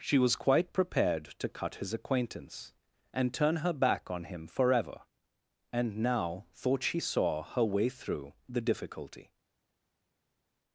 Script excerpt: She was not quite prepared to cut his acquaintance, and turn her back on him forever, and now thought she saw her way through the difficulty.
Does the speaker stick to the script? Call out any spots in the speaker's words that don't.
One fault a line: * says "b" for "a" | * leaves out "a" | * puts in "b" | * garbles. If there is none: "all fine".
* leaves out "not"